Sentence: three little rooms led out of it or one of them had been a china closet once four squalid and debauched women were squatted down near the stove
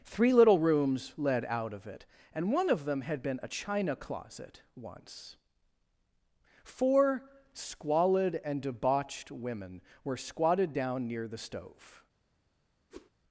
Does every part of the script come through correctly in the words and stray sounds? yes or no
no